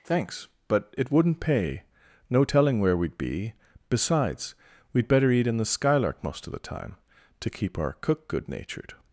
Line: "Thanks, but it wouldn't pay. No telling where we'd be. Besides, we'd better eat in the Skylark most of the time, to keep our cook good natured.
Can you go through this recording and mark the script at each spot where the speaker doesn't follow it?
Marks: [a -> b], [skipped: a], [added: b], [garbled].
"Thanks, but it wouldn't pay. No telling where we'd be. Besides, we'd better eat in the Skylark most of the time, to keep our cook good natured.